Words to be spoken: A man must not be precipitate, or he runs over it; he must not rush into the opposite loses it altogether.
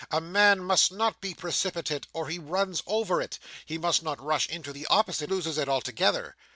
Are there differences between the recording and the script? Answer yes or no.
no